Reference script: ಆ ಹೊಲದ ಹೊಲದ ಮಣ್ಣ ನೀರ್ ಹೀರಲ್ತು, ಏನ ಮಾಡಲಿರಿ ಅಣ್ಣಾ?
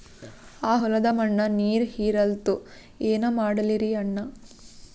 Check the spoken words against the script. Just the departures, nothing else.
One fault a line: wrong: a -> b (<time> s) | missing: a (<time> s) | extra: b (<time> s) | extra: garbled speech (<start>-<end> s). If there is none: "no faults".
missing: ಹೊಲದ (1.0 s)